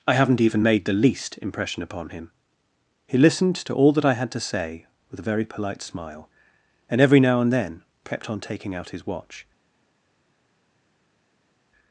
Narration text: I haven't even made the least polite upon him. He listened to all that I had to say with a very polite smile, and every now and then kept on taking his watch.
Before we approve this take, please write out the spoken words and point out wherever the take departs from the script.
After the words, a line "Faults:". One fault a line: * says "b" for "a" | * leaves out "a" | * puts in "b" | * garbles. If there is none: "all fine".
I haven't even made the least impression upon him. He listened to all that I had to say with a very polite smile, and every now and then kept on taking out his watch.
Faults:
* says "impression" for "polite"
* puts in "out"